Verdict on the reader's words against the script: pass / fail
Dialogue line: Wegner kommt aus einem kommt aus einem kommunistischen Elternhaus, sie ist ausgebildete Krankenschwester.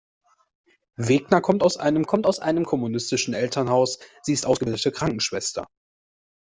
pass